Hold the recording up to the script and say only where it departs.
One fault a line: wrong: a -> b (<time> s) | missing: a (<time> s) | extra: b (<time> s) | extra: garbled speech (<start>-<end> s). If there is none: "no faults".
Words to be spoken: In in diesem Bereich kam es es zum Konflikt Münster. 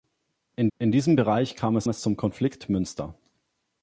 no faults